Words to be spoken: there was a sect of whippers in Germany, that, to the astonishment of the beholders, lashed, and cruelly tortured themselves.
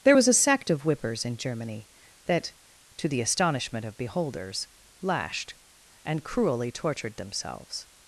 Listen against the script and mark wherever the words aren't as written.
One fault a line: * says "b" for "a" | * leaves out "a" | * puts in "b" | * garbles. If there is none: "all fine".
* leaves out "the"